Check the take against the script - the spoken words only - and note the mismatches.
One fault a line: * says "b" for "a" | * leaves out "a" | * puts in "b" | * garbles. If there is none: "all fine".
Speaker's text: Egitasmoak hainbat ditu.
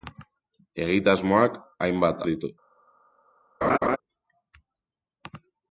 all fine